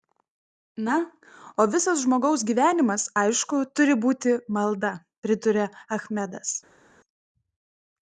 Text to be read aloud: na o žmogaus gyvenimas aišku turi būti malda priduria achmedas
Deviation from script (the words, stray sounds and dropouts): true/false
true